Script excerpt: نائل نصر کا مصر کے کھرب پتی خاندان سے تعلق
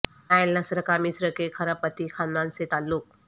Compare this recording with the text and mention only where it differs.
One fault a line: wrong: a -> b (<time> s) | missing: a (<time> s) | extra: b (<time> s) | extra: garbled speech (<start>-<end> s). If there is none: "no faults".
no faults